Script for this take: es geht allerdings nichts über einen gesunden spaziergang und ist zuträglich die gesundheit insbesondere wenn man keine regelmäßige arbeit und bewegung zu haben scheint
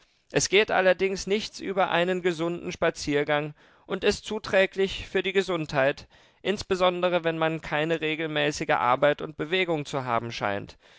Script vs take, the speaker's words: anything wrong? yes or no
yes